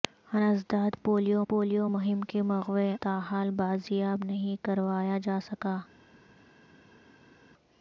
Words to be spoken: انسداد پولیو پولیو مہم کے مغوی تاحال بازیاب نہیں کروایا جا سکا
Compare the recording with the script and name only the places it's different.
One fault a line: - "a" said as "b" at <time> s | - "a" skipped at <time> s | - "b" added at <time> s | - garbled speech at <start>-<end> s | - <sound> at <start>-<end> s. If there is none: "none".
none